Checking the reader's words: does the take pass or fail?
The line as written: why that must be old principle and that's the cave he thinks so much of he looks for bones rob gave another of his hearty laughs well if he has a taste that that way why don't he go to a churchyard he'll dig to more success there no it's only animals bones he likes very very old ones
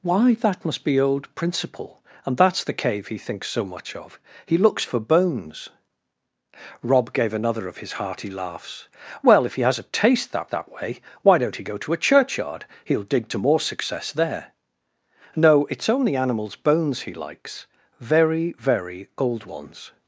pass